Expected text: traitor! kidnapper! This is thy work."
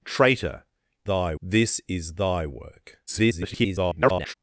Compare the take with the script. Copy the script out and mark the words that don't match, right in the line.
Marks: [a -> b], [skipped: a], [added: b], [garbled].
traitor! [kidnapper! -> thy] This is thy work." [garbled]